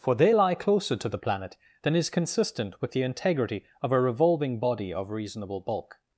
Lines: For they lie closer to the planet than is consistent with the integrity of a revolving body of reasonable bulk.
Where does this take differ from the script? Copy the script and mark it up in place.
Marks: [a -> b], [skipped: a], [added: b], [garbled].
For they lie closer to the planet than is consistent with the integrity of a revolving body of reasonable bulk.